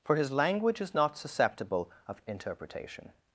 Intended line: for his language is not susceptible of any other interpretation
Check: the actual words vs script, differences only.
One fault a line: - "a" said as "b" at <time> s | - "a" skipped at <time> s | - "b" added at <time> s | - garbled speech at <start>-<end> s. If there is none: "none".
- "any other" skipped at 2.2 s